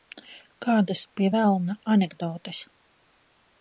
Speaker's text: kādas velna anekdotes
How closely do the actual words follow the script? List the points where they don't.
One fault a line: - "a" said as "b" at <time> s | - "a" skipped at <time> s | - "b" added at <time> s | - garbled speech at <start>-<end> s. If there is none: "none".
- "pie" added at 1.2 s